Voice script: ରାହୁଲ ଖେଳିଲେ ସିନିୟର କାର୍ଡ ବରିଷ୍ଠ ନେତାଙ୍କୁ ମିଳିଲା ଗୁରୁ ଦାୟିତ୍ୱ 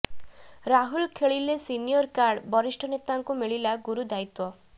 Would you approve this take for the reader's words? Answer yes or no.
yes